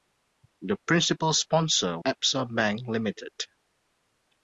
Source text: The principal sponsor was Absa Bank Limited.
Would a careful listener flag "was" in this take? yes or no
yes